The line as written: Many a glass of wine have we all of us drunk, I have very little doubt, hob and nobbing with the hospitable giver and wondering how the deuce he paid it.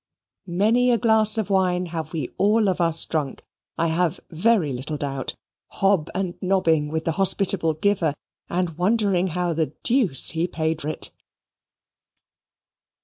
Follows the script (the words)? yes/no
yes